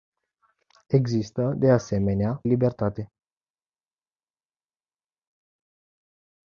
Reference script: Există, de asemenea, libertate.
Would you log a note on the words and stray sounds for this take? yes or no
no